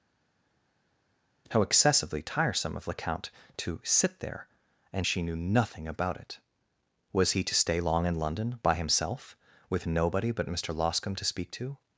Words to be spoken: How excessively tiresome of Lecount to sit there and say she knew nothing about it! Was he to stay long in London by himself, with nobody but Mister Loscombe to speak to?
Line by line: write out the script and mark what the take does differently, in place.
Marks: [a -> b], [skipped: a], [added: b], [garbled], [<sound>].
How excessively tiresome of Lecount to sit there and [skipped: say] she knew nothing about it! Was he to stay long in London by himself, with nobody but Mister Loscombe to speak to?